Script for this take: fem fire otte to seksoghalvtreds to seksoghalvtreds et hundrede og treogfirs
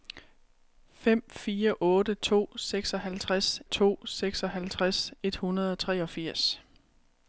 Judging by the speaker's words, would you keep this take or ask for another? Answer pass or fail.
pass